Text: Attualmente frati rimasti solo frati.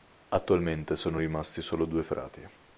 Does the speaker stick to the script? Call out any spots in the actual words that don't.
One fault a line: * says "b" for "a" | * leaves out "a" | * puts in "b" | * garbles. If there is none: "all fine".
* says "sono" for "frati"
* puts in "due"